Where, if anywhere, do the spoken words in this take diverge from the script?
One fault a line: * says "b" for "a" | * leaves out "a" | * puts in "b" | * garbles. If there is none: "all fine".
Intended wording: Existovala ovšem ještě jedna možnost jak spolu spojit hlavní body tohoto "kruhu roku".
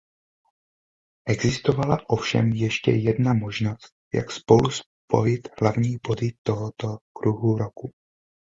all fine